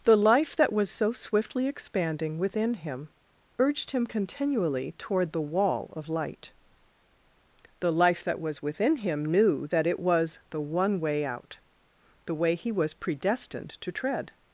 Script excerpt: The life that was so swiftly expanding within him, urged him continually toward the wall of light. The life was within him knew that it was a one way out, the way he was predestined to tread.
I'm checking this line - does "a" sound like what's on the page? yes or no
no